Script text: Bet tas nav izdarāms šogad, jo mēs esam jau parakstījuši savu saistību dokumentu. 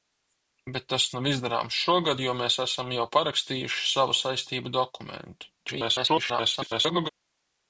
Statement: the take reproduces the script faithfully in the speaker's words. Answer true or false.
false